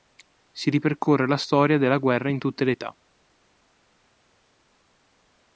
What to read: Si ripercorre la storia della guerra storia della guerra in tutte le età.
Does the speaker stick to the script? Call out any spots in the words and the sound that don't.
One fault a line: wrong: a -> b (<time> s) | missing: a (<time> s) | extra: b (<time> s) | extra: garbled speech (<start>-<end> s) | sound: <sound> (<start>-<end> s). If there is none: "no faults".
missing: storia della guerra (2.3 s)